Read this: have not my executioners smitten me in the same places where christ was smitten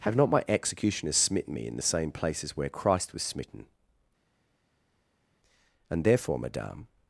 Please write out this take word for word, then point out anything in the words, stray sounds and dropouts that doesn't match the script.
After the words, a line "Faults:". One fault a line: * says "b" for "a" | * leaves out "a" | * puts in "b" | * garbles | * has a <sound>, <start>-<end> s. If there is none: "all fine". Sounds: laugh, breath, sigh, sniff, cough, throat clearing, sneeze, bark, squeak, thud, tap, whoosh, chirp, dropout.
have not my executioners smitten me in the same places where christ was smitten and therefore madame
Faults:
* puts in "and therefore madame"